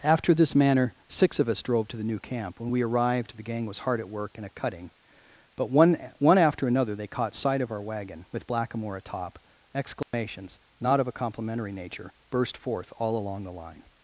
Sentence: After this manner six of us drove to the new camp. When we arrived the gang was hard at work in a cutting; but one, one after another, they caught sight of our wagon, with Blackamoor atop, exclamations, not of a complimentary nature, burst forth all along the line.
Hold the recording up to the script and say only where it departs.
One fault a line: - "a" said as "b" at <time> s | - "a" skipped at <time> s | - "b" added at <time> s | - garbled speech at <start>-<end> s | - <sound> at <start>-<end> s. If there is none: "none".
- dropout at 10.0-10.1 s